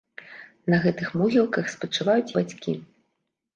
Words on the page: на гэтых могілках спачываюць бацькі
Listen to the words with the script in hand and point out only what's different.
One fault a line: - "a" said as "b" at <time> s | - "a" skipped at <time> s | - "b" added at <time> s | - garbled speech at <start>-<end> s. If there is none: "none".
none